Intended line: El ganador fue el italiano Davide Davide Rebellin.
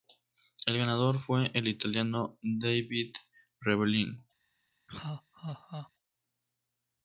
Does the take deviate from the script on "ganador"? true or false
false